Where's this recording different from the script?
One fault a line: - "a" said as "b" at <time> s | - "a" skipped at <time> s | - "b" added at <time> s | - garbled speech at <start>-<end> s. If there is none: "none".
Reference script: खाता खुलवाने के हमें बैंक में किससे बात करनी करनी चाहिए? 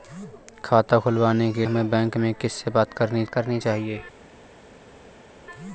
none